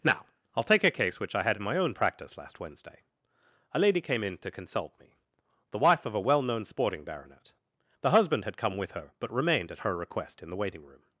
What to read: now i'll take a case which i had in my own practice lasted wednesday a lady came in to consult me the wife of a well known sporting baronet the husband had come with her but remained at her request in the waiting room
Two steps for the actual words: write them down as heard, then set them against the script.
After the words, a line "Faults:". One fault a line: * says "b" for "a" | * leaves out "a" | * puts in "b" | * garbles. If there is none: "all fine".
now i'll take a case which i had in my own practice last wednesday a lady came in to consult me the wife of a well known sporting baronet the husband had come with her but remained at her request in the waiting room
Faults:
* says "last" for "lasted"